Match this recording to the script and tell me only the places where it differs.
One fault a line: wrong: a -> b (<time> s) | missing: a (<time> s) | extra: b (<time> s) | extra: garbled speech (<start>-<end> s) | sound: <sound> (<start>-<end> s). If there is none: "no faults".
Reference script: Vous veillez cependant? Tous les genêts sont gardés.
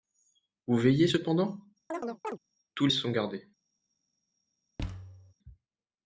sound: chirp (1.9-2.4 s)
missing: les genêts (2.9 s)
sound: thud (4.8-5.3 s)